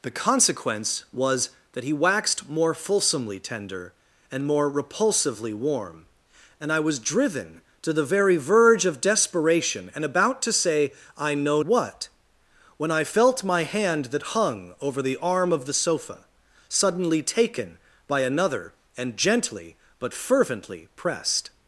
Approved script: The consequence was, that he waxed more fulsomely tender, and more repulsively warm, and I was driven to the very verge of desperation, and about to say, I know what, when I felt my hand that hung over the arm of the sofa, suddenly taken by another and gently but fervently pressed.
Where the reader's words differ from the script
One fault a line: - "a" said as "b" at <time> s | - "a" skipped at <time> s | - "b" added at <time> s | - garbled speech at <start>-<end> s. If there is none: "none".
none